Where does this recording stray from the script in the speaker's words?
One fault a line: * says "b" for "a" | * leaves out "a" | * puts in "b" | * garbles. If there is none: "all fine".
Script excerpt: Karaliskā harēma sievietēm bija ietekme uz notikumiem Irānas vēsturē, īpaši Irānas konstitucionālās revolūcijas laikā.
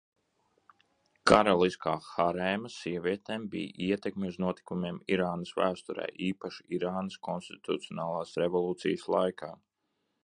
all fine